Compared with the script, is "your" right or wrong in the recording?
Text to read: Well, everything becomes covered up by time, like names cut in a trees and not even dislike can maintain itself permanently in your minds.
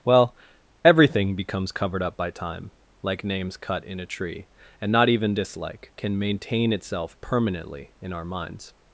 wrong